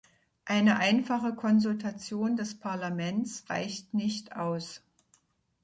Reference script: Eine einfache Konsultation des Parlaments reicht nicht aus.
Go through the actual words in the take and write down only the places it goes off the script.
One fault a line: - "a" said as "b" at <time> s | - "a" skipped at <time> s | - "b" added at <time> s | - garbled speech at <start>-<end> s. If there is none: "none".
none